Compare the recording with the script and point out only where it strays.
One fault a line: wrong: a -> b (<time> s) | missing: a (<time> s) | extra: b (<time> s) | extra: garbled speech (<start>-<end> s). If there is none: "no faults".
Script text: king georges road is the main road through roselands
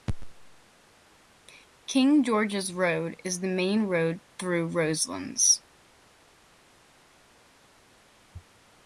no faults